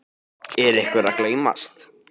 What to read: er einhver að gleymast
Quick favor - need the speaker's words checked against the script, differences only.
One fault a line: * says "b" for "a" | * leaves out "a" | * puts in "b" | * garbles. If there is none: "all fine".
all fine